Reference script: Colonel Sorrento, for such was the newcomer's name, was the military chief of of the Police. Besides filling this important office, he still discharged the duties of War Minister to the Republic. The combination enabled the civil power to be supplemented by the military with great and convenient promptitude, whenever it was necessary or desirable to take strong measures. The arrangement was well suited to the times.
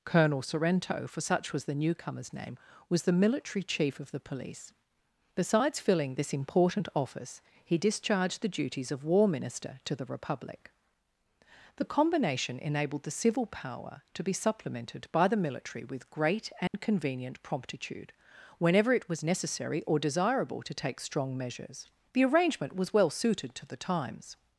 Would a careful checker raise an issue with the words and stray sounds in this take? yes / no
yes